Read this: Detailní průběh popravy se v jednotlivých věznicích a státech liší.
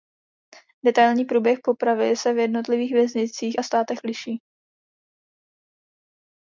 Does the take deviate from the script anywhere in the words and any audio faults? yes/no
no